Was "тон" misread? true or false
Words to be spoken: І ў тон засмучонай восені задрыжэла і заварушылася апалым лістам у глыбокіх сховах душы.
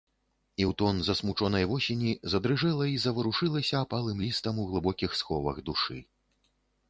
false